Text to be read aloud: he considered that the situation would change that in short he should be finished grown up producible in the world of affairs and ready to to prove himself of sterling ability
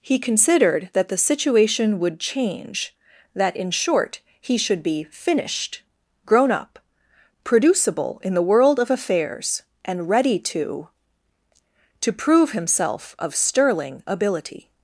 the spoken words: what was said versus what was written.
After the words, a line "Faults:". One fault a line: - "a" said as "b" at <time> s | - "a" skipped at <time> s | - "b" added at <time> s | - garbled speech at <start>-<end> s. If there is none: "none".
he considered that the situation would change that in short he should be finished grown up producible in the world of affairs and ready to to prove himself of sterling ability
Faults:
none